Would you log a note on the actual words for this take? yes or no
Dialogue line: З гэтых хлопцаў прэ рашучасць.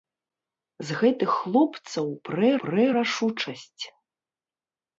yes